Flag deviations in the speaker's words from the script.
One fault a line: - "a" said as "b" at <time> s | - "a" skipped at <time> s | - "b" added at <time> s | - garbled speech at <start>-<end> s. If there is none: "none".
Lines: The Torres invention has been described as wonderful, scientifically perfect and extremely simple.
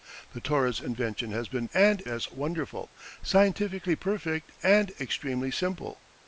- "described" said as "and" at 1.7 s